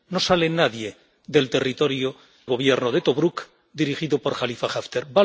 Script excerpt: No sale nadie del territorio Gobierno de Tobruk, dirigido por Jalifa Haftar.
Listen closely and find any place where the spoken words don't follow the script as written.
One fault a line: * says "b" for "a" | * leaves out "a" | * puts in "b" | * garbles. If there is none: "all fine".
all fine